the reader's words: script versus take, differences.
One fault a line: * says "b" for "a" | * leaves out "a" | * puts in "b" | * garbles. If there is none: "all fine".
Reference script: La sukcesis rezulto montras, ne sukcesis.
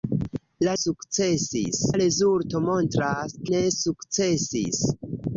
all fine